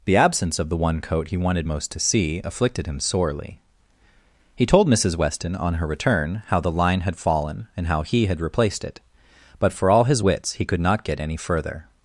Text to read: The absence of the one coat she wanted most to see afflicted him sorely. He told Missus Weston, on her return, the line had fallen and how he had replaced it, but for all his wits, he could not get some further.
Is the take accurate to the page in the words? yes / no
no